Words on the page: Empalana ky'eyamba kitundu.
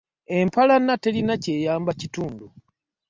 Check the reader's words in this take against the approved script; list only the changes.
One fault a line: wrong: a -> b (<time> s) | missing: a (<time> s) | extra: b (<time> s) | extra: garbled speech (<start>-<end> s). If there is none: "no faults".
extra: terina (1.0 s)